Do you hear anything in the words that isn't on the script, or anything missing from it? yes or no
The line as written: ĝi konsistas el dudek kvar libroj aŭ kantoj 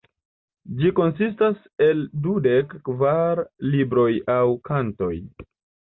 no